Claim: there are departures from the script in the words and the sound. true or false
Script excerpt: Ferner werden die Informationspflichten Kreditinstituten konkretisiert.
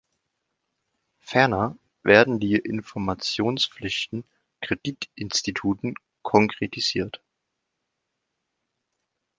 false